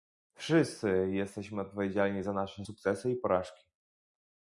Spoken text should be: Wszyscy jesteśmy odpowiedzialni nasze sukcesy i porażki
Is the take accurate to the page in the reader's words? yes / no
no